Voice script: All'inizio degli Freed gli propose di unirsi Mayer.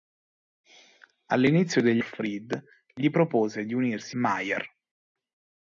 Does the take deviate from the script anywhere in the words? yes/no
no